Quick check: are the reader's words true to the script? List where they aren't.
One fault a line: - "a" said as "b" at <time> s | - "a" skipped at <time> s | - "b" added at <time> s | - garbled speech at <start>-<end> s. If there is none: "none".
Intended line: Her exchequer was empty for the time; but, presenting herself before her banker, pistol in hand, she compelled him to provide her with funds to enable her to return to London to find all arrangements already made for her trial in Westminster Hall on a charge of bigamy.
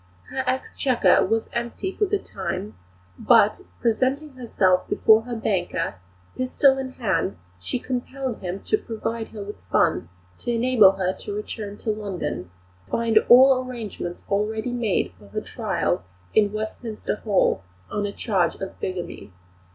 - "to" skipped at 12.5 s